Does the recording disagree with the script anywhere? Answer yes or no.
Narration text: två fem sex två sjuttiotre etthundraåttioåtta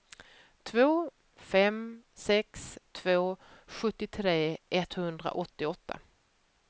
no